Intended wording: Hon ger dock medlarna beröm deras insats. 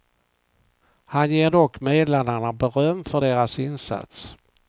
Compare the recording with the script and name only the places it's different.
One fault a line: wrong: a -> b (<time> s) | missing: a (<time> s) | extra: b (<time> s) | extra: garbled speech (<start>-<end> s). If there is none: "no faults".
wrong: Hon -> Han (1.1 s)
extra: för (3.0 s)